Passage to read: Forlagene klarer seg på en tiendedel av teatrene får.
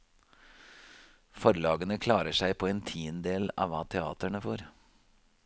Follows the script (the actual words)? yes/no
no